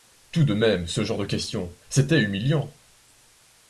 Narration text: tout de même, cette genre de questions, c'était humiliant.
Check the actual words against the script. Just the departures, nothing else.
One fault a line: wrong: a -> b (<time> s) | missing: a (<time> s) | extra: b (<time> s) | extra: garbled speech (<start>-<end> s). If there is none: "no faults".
wrong: cette -> ce (0.9 s)